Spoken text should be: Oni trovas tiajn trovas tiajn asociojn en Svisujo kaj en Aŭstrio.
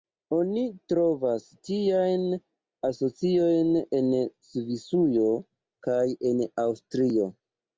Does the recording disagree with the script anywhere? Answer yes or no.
yes